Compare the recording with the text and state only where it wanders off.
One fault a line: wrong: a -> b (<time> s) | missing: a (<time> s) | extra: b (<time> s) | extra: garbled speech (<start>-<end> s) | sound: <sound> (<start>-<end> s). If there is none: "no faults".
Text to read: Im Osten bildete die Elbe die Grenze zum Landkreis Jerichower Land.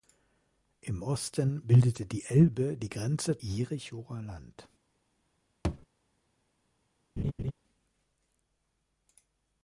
missing: zum Landkreis (3.4 s)
sound: thud (5.6-5.9 s)
sound: laugh (7.2-7.5 s)